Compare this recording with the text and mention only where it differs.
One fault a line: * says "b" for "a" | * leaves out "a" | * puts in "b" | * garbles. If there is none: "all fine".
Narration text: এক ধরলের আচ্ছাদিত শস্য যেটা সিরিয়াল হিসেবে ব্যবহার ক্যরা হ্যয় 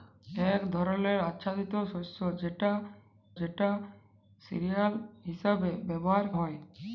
* puts in "যেটা"
* leaves out "ক্যরা"